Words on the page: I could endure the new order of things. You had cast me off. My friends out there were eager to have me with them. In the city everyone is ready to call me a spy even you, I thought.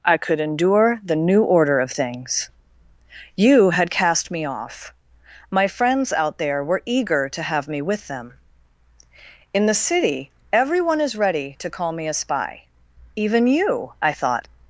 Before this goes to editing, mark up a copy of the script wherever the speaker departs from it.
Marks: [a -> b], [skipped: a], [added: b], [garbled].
I could endure the new order of things. You had cast me off. My friends out there were eager to have me with them. In the city everyone is ready to call me a spy even you, I thought.